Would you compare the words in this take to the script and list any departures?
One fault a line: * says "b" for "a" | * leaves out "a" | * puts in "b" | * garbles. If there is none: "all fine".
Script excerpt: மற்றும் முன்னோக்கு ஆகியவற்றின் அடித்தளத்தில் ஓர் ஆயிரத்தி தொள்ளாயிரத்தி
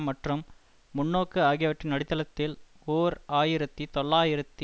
all fine